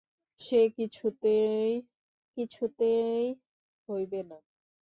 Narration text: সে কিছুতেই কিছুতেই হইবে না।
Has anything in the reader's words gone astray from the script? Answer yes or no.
no